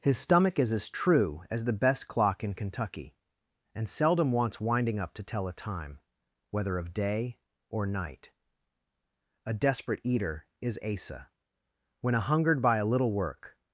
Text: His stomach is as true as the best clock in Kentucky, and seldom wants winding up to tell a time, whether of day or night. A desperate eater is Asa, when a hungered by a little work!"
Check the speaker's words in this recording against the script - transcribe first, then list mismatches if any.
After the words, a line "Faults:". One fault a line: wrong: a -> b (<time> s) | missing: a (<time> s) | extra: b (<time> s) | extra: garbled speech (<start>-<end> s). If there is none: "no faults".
His stomach is as true as the best clock in Kentucky, and seldom wants winding up to tell a time, whether of day or night. A desperate eater is Asa, when a hungered by a little work!"
Faults:
no faults